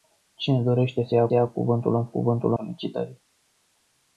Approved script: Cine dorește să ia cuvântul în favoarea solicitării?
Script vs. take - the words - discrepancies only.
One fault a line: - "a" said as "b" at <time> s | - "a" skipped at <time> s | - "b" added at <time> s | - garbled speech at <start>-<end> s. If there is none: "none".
- "ia" added at 1.3 s
- "favoarea" said as "cuvântul" at 2.0 s